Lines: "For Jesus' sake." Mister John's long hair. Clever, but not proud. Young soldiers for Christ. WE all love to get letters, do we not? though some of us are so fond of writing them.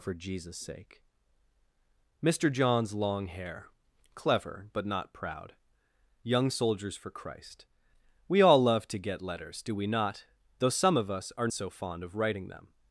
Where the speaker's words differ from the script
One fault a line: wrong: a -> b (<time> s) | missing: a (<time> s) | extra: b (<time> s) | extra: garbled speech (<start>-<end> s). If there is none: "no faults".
no faults